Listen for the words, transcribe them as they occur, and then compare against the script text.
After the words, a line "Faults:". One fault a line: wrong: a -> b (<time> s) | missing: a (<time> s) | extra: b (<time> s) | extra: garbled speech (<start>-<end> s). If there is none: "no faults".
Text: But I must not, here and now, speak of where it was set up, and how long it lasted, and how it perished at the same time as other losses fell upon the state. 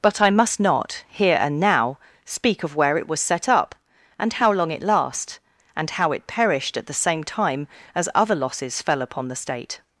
But I must not, here and now, speak of where it was set up, and how long it last, and how it perished at the same time as other losses fell upon the state.
Faults:
wrong: lasted -> last (4.8 s)